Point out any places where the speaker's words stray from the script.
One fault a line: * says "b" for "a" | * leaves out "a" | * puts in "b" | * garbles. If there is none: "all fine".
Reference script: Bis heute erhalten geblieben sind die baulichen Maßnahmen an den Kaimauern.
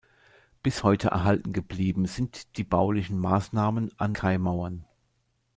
* leaves out "den"